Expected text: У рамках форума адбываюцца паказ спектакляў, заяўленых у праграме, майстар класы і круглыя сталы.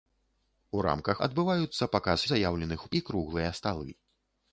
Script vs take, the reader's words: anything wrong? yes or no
yes